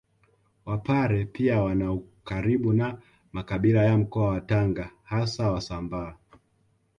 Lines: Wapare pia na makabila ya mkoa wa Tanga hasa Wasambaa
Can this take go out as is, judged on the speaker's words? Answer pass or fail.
fail